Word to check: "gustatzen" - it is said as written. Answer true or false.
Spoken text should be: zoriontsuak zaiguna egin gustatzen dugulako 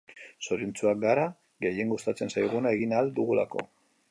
false